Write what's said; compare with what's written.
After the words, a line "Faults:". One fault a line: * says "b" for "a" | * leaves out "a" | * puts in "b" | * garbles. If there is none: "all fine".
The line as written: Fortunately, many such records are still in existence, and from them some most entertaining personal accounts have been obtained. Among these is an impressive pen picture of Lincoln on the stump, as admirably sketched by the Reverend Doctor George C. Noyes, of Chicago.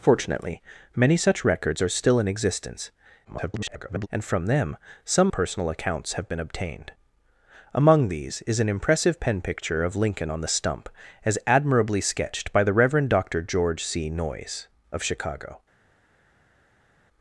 Fortunately, many such records are still in existence, [garbled] and from them some personal accounts have been obtained. Among these is an impressive pen picture of Lincoln on the stump, as admirably sketched by the Reverend Doctor George C. Noyes, of Chicago.
Faults:
* garbles
* leaves out "most entertaining"